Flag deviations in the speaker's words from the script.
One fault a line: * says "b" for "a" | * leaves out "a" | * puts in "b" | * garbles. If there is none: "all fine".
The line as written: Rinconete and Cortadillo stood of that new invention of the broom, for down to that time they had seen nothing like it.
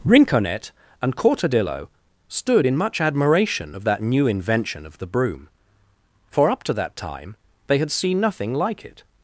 * puts in "in much admiration"
* says "up" for "down"